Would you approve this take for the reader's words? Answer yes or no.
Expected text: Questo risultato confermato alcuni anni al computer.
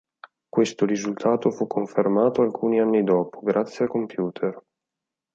no